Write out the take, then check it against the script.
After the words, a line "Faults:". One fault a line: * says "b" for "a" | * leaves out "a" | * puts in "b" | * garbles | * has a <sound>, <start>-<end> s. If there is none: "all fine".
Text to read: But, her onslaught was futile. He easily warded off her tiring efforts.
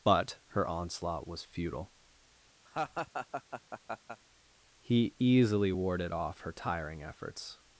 But, her onslaught was futile. He easily warded off her tiring efforts.
Faults:
* has a laugh, 2.7-4.2 s